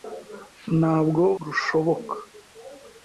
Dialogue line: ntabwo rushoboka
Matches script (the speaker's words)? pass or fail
pass